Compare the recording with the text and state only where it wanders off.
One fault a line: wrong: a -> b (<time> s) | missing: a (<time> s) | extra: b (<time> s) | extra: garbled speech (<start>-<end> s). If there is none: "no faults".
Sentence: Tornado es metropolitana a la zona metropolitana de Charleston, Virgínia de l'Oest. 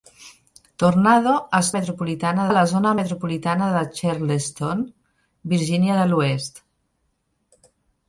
no faults